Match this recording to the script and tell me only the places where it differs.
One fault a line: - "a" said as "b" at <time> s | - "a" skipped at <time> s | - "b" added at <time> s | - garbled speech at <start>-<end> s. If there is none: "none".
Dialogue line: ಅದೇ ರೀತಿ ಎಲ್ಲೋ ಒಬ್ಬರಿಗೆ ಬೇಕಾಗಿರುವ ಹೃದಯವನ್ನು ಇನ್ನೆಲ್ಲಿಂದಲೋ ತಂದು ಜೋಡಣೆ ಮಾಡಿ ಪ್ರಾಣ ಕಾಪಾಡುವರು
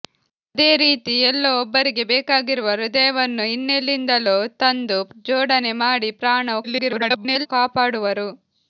- garbled speech at 6.6-7.5 s